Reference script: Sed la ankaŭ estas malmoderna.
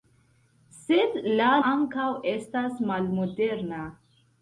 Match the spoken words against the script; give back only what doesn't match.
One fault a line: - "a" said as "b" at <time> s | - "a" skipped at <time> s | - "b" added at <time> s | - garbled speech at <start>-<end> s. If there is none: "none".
none